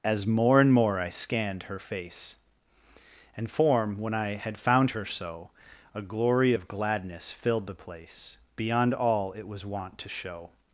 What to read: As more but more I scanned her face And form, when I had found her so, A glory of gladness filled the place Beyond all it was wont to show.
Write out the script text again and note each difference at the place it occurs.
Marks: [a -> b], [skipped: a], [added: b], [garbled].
As more [but -> and] more I scanned her face And form, when I had found her so, A glory of gladness filled the place Beyond all it was wont to show.